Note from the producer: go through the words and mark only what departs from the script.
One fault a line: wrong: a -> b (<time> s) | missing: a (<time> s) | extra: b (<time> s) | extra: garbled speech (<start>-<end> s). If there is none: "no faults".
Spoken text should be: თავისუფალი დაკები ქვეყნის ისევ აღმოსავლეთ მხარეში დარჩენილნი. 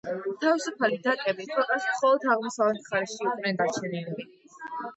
wrong: ისევ -> მხოლოდ (2.0 s)
extra: იყვნენ (3.3 s)